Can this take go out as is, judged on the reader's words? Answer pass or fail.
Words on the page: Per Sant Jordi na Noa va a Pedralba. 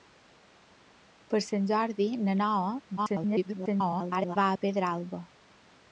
fail